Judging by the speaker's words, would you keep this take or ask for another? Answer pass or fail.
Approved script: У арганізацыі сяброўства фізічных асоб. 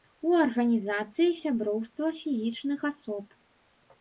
pass